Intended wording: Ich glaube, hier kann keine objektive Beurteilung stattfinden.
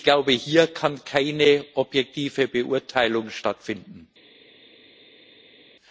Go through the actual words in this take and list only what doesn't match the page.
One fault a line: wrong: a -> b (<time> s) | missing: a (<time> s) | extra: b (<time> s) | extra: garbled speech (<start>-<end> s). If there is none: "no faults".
no faults